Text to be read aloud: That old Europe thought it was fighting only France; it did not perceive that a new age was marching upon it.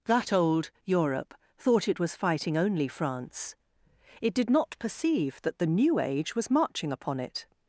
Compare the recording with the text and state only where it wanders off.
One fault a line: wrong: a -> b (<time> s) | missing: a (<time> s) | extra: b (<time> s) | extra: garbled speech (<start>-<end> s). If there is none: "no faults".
wrong: a -> the (5.6 s)